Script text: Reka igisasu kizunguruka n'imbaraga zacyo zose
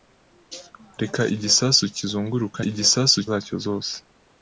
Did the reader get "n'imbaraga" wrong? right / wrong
wrong